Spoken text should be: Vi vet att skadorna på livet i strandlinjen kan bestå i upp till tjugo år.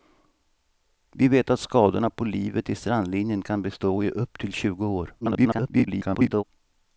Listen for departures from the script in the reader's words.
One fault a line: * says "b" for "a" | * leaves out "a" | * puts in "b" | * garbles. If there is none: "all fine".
* garbles